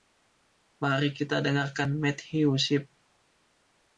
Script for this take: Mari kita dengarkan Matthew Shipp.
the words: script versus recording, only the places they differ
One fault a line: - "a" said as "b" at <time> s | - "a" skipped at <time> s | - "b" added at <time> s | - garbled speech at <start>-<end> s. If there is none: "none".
none